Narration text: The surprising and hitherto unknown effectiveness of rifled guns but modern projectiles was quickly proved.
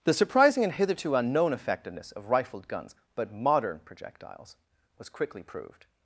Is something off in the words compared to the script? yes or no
no